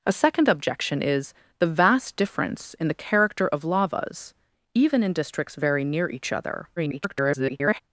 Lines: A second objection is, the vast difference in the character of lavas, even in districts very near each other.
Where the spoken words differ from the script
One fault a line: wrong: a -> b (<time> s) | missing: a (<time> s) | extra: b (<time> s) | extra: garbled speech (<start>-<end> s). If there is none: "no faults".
extra: garbled speech (6.8-7.8 s)